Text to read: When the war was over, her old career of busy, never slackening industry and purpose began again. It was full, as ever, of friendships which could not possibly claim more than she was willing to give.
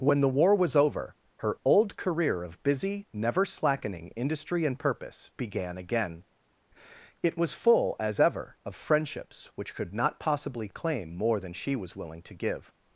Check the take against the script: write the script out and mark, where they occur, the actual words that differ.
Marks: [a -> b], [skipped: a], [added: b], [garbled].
When the war was over, her old career of busy, never slackening industry and purpose began again. It was full, as ever, of friendships which could not possibly claim more than she was willing to give.